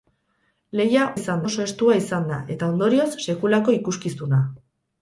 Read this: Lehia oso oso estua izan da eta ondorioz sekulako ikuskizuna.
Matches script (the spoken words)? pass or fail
fail